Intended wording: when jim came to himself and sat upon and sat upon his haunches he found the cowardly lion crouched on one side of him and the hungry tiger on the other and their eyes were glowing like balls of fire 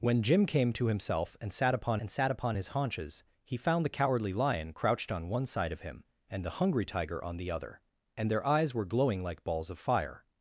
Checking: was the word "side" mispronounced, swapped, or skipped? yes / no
no